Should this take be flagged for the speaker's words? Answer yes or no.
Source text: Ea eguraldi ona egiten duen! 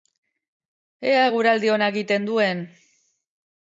no